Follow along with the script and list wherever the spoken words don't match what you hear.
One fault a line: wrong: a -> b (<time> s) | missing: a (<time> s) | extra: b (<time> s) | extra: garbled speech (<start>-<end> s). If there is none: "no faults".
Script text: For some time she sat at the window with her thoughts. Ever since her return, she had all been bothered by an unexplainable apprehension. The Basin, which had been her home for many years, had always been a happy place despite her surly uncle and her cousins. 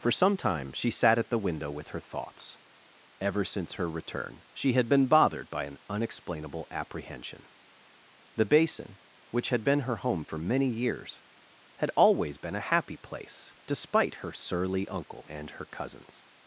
missing: all (4.9 s)